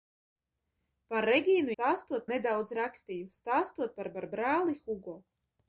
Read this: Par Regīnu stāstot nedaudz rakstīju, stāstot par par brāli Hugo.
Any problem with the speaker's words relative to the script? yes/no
no